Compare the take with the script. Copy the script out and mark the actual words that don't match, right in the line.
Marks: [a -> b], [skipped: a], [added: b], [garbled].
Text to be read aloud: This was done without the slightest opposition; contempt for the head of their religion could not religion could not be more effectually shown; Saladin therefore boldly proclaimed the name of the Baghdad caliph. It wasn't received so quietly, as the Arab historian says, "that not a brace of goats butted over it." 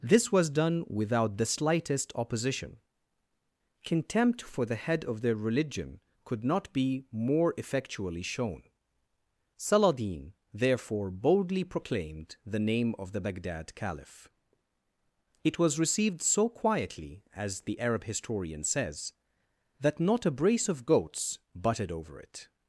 This was done without the slightest opposition; contempt for the head of their religion could not [skipped: religion could not] be more effectually shown; Saladin therefore boldly proclaimed the name of the Baghdad caliph. It [wasn't -> was] received so quietly, as the Arab historian says, "that not a brace of goats butted over it."